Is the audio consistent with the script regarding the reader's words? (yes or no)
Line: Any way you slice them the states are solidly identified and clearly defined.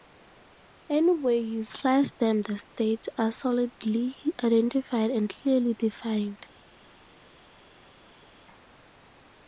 yes